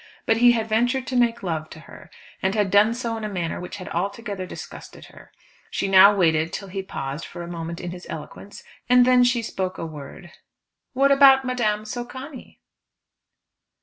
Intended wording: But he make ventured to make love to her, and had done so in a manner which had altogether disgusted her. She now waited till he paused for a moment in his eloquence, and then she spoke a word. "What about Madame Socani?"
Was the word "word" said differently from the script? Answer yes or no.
no